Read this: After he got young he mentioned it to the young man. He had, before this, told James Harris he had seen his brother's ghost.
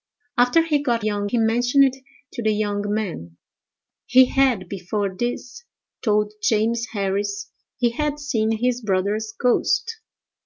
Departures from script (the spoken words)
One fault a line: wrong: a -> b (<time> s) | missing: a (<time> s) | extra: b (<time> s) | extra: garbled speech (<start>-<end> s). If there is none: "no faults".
no faults